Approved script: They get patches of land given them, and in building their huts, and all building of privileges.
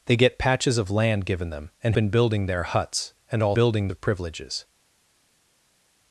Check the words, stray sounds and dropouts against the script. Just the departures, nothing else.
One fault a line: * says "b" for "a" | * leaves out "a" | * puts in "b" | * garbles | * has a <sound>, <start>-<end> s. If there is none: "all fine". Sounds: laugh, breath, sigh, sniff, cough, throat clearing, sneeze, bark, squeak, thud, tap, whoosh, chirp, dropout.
all fine